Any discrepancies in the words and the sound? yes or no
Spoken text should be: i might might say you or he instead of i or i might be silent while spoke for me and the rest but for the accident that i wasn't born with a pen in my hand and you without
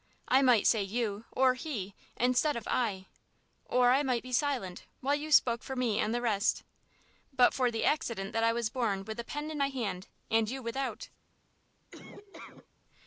yes